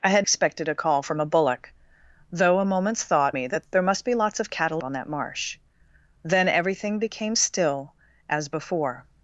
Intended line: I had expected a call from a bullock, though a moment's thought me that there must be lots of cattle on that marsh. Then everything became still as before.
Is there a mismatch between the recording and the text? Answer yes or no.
no